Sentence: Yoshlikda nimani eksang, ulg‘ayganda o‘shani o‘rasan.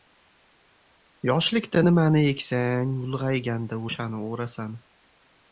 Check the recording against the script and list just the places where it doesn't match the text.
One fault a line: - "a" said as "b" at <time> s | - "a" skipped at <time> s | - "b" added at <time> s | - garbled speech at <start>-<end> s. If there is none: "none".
none